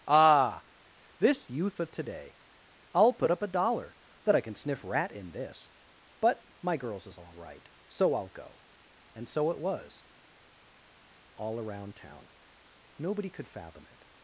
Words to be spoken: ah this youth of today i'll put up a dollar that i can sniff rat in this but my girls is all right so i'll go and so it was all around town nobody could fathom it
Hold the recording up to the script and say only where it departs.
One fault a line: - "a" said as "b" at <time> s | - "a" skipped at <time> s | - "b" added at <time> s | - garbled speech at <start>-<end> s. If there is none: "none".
none